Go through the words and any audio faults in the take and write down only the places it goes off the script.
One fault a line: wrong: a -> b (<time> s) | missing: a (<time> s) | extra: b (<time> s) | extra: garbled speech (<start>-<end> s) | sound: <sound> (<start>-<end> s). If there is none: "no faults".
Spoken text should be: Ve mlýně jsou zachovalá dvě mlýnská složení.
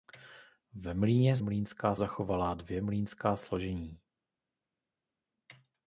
wrong: jsou -> mlýnská (1.4 s)